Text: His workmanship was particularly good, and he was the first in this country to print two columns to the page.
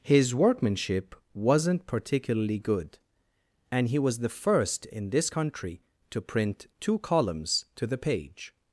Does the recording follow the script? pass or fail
fail